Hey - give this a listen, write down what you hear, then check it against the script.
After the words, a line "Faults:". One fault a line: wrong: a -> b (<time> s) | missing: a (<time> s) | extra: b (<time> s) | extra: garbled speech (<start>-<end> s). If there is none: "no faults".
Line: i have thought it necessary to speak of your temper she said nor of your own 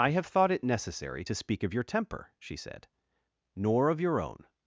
i have thought it necessary to speak of your temper she said nor of your own
Faults:
no faults